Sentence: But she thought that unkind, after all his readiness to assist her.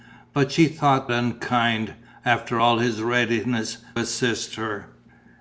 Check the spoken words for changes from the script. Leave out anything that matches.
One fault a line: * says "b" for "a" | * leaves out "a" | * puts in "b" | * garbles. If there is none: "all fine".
* leaves out "that"
* leaves out "to"